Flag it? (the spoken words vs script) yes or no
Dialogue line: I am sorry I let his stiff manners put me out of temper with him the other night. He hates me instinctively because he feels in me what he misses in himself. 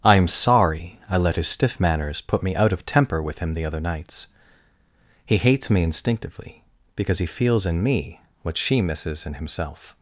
yes